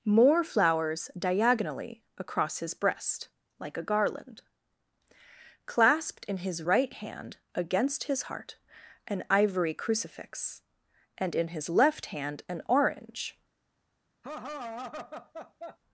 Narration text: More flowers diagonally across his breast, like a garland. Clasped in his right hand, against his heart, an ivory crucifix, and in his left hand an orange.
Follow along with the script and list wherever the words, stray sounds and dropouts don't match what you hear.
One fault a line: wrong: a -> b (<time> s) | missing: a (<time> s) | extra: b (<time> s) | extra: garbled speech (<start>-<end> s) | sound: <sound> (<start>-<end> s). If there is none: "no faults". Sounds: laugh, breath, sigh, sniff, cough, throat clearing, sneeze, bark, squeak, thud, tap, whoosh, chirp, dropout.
sound: laugh (14.2-15.8 s)